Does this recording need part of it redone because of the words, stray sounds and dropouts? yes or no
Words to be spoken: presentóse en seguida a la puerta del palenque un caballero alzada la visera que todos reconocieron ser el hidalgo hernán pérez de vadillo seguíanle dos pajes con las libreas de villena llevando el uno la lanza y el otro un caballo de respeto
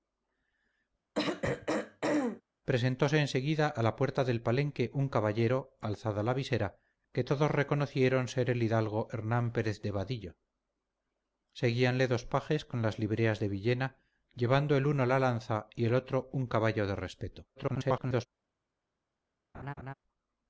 yes